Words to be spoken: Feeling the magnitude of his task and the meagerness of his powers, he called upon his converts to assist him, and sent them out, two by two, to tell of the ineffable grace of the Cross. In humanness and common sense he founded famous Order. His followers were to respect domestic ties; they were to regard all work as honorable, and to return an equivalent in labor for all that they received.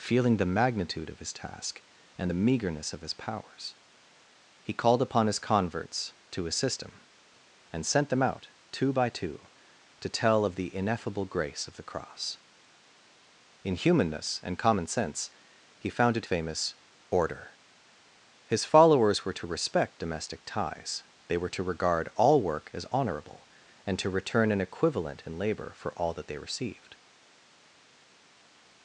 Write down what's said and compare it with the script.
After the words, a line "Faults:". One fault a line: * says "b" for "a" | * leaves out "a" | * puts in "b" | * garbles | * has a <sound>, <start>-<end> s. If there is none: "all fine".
Feeling the magnitude of his task and the meagerness of his powers, he called upon his converts to assist him, and sent them out, two by two, to tell of the ineffable grace of the Cross. In humanness and common sense he founded famous Order. His followers were to respect domestic ties; they were to regard all work as honorable, and to return an equivalent in labor for all that they received.
Faults:
all fine